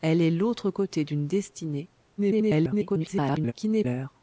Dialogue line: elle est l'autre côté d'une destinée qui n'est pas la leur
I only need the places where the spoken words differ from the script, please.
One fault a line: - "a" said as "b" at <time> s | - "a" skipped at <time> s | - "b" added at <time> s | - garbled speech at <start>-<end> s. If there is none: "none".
- garbled speech at 2.2-3.5 s
- "pas la" skipped at 3.8 s